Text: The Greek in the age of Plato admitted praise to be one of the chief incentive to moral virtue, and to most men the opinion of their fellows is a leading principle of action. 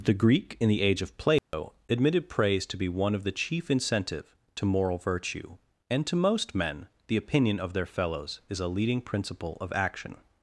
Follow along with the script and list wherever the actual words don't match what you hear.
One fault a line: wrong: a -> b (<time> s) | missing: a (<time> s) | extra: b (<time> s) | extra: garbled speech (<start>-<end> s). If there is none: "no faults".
no faults